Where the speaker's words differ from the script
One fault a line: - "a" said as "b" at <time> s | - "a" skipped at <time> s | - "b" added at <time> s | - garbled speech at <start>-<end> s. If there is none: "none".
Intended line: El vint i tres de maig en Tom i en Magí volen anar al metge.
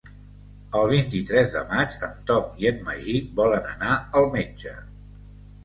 none